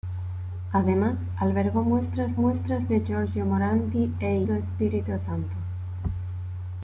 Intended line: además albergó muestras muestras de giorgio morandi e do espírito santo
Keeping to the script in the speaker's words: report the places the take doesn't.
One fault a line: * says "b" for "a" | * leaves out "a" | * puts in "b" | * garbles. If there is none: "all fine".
all fine